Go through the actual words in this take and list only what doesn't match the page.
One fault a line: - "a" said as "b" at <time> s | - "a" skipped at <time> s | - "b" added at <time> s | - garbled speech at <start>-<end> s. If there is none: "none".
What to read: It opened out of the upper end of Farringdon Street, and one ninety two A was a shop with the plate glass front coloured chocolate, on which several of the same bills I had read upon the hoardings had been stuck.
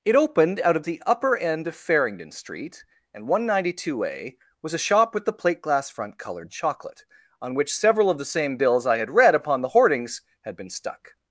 none